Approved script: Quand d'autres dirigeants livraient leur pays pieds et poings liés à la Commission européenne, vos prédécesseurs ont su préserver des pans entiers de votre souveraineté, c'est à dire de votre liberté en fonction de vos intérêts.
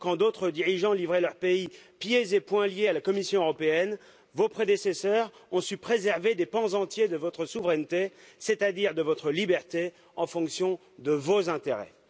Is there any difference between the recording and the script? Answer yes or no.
no